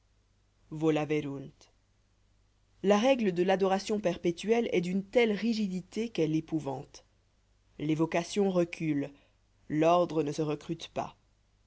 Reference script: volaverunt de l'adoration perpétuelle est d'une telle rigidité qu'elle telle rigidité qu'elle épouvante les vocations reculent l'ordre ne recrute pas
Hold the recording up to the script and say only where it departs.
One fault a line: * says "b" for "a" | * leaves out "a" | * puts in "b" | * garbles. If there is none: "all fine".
* puts in "la règle"
* leaves out "telle rigidité qu'elle"
* puts in "se"